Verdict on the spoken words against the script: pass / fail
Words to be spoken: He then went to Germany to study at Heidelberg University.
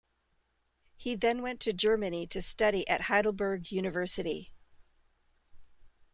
pass